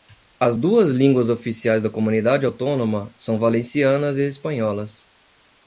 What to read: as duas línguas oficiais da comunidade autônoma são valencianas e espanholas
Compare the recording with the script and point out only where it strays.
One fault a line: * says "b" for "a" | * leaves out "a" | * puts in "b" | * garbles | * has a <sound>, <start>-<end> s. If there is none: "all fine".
all fine